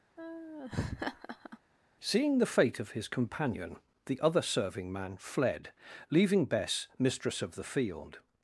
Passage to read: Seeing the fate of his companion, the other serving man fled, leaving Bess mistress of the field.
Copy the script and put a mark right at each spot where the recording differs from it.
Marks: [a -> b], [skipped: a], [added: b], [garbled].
Seeing the fate of his companion, the other serving man fled, leaving Bess mistress of the field.